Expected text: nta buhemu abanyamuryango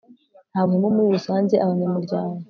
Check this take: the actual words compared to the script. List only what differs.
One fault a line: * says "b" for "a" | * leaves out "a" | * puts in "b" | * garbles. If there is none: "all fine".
* puts in "muri rusange"